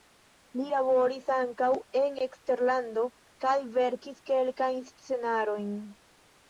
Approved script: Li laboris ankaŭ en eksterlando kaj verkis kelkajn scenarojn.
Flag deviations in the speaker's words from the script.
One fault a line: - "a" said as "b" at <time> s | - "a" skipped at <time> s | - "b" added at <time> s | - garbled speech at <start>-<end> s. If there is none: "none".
none